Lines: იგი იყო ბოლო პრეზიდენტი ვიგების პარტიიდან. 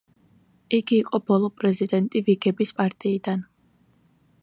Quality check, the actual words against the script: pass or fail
pass